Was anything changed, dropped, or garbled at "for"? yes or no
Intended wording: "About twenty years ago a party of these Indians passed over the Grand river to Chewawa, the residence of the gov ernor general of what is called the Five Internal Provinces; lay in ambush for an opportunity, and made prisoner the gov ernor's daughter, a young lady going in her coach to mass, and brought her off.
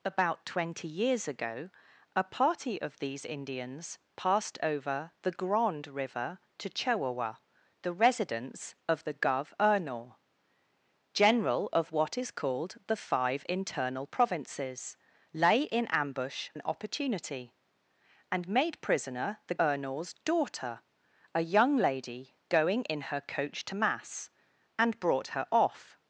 yes